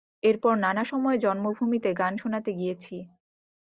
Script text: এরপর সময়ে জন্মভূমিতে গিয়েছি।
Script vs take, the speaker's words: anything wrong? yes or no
yes